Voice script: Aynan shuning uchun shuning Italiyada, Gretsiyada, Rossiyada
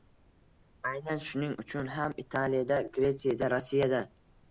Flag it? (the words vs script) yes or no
yes